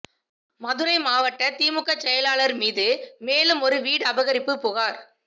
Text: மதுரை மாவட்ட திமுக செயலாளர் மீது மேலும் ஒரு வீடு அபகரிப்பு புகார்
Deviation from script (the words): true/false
false